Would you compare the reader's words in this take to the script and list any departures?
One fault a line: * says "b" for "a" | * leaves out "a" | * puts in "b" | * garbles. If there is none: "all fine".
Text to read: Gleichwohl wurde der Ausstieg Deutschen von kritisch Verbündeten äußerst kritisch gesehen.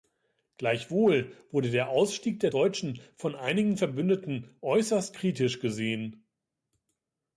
* puts in "der"
* says "einigen" for "kritisch"